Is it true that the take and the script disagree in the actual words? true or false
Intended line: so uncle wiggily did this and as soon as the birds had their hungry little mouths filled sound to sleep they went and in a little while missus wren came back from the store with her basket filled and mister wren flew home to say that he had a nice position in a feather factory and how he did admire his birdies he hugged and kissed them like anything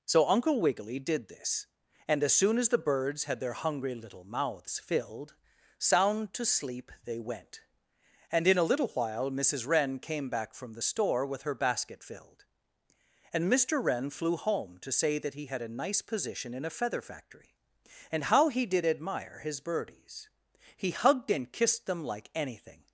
false